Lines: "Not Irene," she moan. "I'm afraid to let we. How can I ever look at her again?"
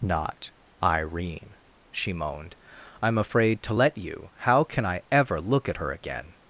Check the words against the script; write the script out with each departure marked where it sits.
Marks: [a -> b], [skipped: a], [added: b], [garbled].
"Not Irene," she [moan. -> moaned] "I'm afraid to let [we. -> you] How can I ever look at her again?"